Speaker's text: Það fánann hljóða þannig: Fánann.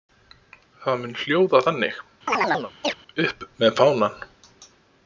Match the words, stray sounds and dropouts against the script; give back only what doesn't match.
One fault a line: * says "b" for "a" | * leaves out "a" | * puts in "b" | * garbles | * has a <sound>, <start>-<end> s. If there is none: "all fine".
* says "mun" for "fánann"
* has a chirp, 2.3-3.0 s
* puts in "Upp með"